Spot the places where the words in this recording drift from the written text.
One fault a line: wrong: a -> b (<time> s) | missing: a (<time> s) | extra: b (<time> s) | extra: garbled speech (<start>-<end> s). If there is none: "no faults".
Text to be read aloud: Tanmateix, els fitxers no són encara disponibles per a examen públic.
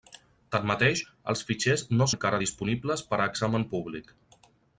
missing: són (2.1 s)